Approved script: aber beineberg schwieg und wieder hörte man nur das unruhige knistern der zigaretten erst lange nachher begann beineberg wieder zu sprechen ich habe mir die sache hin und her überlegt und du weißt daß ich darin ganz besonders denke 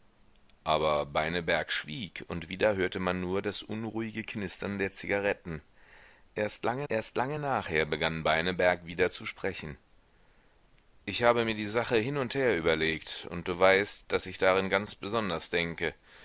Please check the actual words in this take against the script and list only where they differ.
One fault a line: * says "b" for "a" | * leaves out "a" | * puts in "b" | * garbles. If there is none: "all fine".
* puts in "erst lange"